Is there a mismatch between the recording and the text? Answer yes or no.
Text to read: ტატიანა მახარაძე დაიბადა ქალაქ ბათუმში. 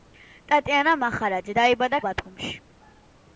yes